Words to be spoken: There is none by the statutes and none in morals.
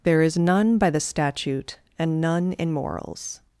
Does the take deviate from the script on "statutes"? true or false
true